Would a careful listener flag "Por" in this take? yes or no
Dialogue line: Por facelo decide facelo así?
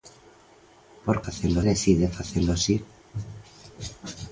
no